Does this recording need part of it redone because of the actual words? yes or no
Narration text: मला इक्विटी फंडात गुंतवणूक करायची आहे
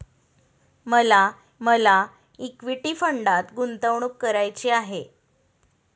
yes